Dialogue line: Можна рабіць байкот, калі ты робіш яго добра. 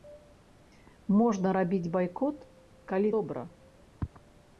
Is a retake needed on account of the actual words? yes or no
yes